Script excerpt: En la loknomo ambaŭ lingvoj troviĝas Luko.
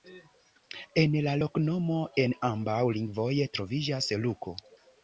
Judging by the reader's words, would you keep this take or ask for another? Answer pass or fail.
fail